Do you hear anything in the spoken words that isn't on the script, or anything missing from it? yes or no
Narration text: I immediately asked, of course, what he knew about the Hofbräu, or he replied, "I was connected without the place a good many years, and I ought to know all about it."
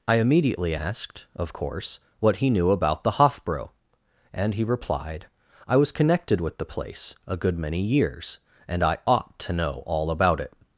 yes